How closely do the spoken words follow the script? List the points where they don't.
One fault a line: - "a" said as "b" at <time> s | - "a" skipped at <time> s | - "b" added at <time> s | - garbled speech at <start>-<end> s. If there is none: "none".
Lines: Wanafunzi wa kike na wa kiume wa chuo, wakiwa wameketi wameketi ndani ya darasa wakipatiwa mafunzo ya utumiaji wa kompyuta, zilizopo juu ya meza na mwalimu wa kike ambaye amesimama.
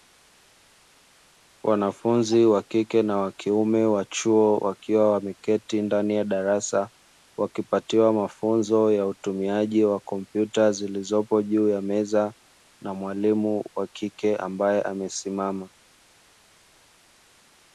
- "wameketi" skipped at 5.8 s